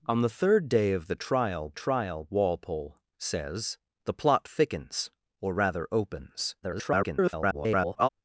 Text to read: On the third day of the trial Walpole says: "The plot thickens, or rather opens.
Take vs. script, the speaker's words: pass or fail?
fail